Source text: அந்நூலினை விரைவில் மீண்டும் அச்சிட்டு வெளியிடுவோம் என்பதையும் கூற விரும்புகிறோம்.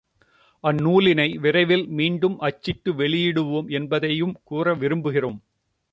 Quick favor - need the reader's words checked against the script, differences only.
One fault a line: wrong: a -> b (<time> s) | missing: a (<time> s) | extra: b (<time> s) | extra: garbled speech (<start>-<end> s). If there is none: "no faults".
no faults